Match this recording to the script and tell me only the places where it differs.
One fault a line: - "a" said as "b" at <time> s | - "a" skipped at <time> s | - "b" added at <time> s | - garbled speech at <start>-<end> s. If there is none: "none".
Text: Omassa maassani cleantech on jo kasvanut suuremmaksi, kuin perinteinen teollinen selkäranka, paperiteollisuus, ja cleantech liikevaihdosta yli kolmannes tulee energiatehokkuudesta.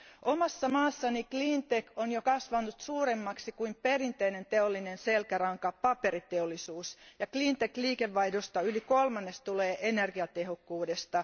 none